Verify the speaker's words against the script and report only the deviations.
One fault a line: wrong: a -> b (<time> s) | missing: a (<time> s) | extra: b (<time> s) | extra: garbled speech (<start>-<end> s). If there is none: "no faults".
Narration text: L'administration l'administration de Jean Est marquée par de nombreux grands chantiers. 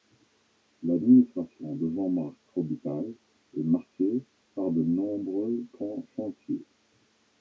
missing: l'administration (1.8 s)
extra: Marc Robitaille (2.1 s)